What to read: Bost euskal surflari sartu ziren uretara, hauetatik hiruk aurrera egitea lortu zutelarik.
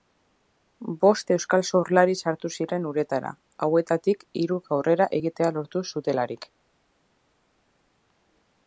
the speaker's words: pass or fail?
pass